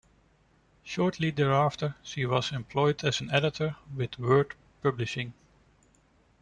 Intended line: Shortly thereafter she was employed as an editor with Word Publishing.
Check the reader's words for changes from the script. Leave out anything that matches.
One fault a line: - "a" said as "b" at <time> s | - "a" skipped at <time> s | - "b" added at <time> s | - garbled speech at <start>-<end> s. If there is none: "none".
none